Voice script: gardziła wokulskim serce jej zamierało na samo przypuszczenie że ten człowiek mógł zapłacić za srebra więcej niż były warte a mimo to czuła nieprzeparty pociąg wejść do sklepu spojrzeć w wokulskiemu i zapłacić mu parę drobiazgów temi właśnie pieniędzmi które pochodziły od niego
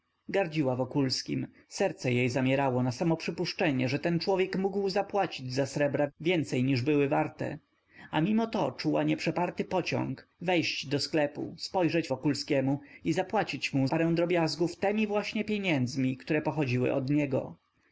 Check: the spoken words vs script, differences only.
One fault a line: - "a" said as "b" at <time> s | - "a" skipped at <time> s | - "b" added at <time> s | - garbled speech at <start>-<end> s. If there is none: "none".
none